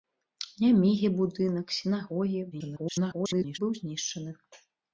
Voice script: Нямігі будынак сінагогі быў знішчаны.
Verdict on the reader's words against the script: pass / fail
fail